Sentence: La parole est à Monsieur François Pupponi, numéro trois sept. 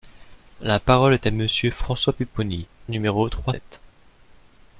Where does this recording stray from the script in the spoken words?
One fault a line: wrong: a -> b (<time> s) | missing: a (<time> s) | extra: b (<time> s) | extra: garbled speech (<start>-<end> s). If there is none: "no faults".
no faults